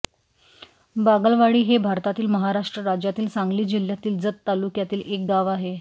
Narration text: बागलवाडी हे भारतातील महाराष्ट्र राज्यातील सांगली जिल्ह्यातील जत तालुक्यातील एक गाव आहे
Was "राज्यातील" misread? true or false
false